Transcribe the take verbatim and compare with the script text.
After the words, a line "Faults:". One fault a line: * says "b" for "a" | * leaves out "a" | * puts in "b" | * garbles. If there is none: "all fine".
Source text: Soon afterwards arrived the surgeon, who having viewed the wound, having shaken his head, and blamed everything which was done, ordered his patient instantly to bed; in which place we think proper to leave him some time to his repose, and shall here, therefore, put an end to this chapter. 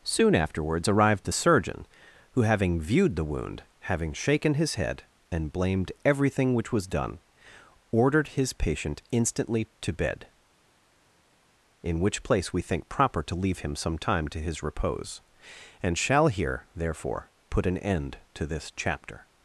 Soon afterwards arrived the surgeon, who having viewed the wound, having shaken his head, and blamed everything which was done, ordered his patient instantly to bed; in which place we think proper to leave him some time to his repose, and shall here, therefore, put an end to this chapter.
Faults:
all fine